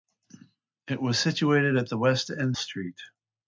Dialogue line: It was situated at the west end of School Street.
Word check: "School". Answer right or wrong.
wrong